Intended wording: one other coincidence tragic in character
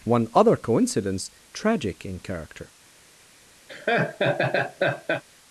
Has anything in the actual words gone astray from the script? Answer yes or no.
no